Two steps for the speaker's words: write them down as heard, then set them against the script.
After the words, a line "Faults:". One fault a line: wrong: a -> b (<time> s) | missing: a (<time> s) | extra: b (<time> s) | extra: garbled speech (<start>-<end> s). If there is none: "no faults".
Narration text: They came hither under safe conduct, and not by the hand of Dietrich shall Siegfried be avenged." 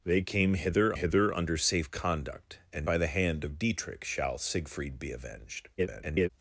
They came hither hither under safe conduct, and by the hand of Dietrich shall Siegfried be avenged." [garbled]
Faults:
extra: hither (0.9 s)
missing: not (2.9 s)
extra: garbled speech (5.8-6.3 s)